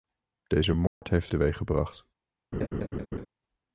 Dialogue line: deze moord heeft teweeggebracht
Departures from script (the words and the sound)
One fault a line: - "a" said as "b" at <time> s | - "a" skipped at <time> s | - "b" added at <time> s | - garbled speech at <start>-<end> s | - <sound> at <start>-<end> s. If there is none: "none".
- dropout at 0.9-1.0 s
- laugh at 2.5-3.3 s